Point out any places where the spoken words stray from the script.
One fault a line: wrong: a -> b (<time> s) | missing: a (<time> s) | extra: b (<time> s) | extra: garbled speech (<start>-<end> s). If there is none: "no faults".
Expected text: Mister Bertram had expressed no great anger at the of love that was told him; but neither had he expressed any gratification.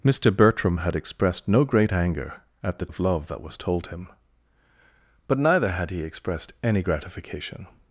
no faults